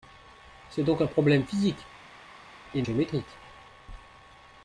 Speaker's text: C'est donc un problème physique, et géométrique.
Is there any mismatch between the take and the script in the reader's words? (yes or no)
no